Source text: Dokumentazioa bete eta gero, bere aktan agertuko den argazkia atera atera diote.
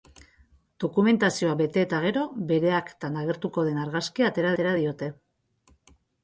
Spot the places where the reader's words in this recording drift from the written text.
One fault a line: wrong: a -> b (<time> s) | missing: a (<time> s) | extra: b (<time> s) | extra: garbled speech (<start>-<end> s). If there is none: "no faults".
no faults